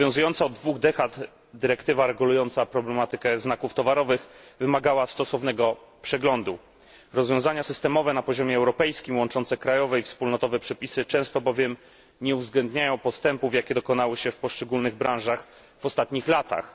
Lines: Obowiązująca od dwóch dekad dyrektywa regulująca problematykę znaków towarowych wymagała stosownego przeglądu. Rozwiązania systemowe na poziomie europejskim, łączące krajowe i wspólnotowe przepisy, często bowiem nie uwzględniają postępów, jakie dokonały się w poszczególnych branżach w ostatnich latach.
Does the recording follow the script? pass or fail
pass